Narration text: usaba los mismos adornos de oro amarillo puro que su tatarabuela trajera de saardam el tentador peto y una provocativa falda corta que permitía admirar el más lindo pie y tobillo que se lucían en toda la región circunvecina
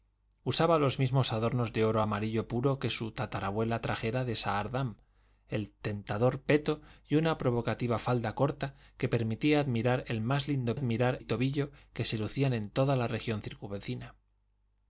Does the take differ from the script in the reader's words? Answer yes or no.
yes